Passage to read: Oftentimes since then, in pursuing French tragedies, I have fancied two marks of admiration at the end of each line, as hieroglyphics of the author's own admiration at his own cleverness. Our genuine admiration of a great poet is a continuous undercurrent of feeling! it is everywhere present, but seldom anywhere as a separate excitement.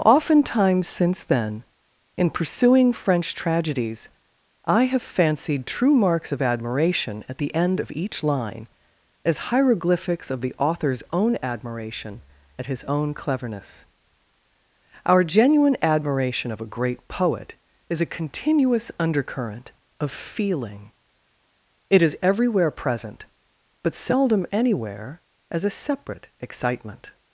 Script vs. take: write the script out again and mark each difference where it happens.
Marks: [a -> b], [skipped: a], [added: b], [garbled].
Oftentimes since then, in pursuing French tragedies, I have fancied [two -> true] marks of admiration at the end of each line, as hieroglyphics of the author's own admiration at his own cleverness. Our genuine admiration of a great poet is a continuous undercurrent of feeling! it is everywhere present, but seldom anywhere as a separate excitement.